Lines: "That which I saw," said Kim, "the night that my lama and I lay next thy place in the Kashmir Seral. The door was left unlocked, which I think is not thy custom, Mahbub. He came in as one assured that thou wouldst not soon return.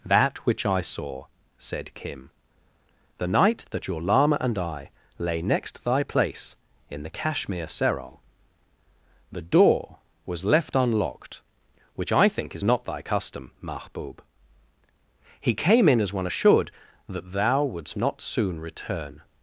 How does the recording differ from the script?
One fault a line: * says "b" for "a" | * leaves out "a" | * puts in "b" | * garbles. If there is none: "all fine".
* says "your" for "my"